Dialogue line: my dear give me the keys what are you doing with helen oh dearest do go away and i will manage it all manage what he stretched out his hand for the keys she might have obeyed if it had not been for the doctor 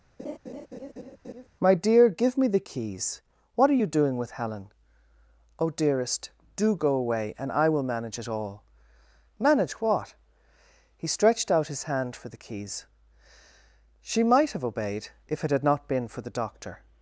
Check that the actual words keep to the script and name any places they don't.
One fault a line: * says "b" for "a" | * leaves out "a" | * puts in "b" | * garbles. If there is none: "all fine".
all fine